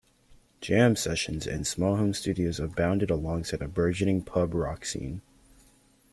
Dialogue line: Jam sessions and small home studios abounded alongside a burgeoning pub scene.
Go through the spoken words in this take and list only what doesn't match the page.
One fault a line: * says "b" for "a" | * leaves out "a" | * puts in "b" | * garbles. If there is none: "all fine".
* puts in "rock"